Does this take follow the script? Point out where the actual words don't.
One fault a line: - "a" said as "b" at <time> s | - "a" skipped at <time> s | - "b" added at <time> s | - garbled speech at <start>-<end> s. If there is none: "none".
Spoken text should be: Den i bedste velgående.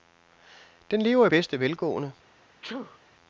- "lever" added at 1.0 s